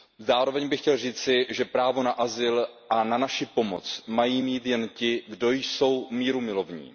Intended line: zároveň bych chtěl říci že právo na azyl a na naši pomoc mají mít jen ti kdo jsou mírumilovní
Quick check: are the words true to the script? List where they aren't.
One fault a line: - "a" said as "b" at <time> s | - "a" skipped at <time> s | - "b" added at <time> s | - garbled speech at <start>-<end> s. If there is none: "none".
none